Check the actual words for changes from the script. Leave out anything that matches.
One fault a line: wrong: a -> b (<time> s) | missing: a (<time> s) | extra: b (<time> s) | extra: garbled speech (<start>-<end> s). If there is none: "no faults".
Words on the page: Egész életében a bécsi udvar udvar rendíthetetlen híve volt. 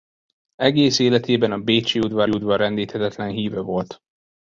no faults